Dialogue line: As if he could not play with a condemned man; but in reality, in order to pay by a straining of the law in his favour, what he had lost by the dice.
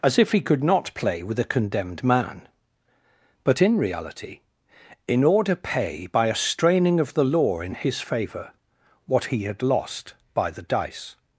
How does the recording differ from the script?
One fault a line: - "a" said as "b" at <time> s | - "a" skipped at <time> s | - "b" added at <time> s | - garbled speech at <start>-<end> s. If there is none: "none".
- "to" skipped at 5.5 s